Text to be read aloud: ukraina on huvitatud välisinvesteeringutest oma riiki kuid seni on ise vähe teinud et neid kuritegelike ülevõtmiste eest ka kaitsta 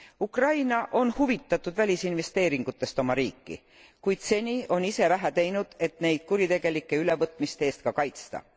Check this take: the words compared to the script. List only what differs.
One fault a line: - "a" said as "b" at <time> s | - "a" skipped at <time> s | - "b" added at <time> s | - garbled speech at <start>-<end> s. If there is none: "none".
none